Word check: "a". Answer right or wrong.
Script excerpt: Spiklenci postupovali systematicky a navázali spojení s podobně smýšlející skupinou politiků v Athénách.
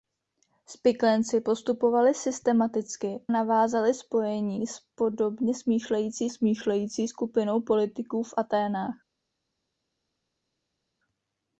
wrong